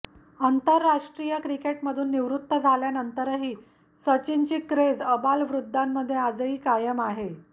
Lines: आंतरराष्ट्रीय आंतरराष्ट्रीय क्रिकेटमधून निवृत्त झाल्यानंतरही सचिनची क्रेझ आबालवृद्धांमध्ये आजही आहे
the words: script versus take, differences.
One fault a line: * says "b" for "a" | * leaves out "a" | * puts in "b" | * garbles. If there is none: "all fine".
* leaves out "आंतरराष्ट्रीय"
* puts in "कायम"